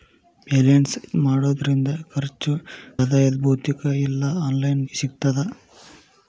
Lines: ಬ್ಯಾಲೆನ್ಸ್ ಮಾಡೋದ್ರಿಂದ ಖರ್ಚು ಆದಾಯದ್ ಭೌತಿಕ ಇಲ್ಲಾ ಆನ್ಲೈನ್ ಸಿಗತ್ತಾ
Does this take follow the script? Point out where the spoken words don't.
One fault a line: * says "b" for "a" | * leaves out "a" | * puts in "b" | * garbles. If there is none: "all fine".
all fine